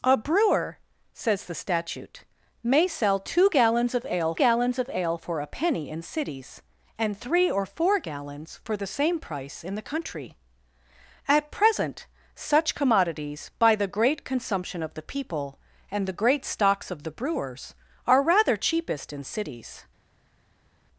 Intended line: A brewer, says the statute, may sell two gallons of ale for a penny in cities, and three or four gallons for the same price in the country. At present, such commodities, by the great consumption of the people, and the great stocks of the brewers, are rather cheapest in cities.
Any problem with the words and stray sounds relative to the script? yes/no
yes